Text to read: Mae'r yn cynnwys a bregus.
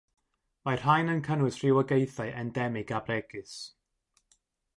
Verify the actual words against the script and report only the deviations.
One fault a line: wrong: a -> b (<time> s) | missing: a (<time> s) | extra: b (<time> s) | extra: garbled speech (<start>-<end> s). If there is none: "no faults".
extra: rhain (0.8 s)
extra: rhywogaethau endemig (1.6 s)